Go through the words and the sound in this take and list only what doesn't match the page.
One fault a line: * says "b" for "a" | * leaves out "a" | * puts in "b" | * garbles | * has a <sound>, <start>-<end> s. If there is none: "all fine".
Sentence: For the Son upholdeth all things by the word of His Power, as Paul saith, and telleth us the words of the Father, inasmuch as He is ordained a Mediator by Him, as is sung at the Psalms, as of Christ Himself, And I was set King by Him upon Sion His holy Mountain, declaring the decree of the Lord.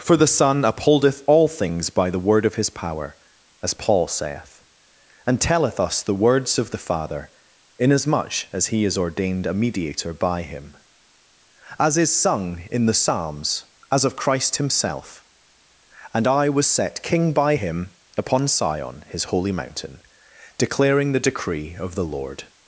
* says "in" for "at"